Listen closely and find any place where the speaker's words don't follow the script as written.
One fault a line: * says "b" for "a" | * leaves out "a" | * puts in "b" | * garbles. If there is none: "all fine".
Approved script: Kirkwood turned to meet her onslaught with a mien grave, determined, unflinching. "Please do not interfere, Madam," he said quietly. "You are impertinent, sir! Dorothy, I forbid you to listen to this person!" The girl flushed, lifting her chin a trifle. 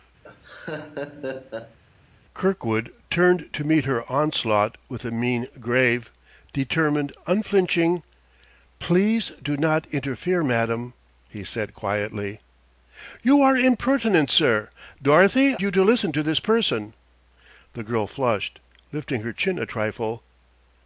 * leaves out "I forbid"